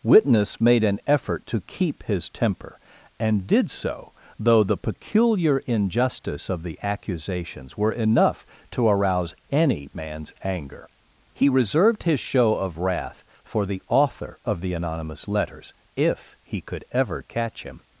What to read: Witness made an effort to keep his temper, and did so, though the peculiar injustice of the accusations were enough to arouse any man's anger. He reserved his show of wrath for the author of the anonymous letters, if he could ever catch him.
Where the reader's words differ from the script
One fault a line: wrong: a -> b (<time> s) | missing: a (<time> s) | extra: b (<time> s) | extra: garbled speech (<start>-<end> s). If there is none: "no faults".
no faults